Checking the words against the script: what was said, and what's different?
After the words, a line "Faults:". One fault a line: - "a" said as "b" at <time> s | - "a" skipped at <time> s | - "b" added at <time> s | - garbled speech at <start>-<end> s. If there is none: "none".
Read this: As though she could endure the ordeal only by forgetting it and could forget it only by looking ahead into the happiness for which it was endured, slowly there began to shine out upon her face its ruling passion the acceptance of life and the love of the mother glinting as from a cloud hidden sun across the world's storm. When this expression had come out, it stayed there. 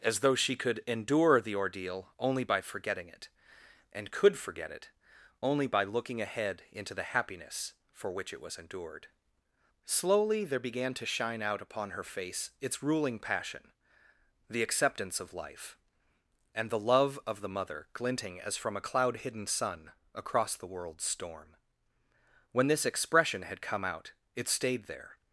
As though she could endure the ordeal only by forgetting it and could forget it only by looking ahead into the happiness for which it was endured, slowly there began to shine out upon her face its ruling passion the acceptance of life and the love of the mother glinting as from a cloud hidden sun across the world's storm. When this expression had come out, it stayed there.
Faults:
none